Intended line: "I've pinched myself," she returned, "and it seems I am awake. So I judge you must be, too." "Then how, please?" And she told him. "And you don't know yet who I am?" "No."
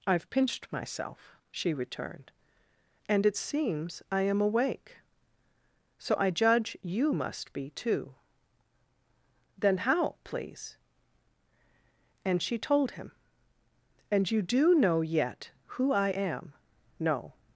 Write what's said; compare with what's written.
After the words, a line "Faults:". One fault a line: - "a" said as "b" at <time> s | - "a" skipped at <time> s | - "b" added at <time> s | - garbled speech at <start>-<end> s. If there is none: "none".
"I've pinched myself," she returned, "and it seems I am awake. So I judge you must be, too." "Then how, please?" And she told him. "And you do know yet who I am?" "No."
Faults:
- "don't" said as "do" at 14.4 s